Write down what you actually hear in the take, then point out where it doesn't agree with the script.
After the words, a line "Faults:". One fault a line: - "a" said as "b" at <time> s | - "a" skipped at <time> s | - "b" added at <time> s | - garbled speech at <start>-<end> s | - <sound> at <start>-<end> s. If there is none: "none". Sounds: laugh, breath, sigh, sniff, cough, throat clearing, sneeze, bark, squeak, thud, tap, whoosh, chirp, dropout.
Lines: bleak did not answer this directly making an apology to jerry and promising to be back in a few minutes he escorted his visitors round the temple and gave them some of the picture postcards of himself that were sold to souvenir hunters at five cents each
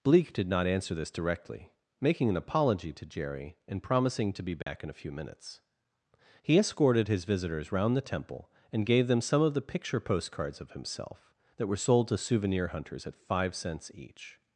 bleak did not answer this directly making an apology to jerry and promising to be back in a few minutes he escorted his visitors round the temple and gave them some of the picture postcards of himself that were sold to souvenir hunters at five cents each
Faults:
- dropout at 4.6-4.7 s